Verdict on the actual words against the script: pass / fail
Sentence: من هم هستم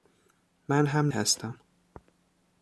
pass